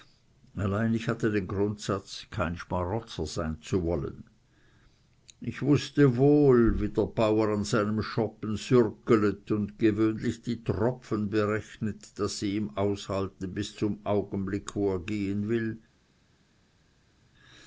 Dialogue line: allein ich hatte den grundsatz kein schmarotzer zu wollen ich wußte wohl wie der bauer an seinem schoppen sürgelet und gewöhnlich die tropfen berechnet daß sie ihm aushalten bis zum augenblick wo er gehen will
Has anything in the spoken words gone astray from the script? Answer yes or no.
yes